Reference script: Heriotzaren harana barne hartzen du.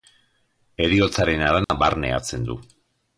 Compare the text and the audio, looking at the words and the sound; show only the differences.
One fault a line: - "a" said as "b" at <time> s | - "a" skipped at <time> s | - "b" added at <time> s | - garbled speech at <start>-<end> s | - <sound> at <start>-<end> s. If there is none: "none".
- dropout at 1.6-1.7 s